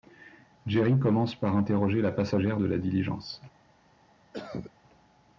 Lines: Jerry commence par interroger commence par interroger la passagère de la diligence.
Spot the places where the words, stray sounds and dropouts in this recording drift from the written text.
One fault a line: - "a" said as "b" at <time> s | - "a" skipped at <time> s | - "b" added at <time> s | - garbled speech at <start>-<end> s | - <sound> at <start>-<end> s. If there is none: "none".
- "commence par interroger" skipped at 2.0 s
- cough at 4.3-4.7 s